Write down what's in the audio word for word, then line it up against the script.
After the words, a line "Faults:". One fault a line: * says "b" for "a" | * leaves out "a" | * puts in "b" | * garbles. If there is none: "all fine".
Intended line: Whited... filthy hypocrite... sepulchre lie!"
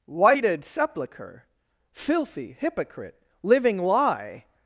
Whited sepulchre... filthy hypocrite... living lie!"
Faults:
* puts in "sepulchre"
* says "living" for "sepulchre"